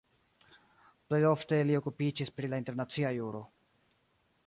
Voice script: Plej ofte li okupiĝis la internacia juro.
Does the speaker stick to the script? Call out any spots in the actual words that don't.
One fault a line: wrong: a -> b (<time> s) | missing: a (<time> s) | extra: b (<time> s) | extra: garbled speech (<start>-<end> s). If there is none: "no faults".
extra: pri (2.4 s)